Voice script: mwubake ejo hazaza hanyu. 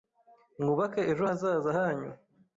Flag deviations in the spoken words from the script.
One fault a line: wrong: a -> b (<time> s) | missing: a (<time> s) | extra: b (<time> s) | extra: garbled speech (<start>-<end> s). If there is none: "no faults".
no faults